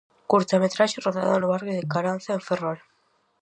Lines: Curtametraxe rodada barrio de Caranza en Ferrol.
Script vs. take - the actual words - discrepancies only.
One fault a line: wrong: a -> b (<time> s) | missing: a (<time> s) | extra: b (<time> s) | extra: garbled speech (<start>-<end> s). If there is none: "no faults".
extra: no (1.4 s)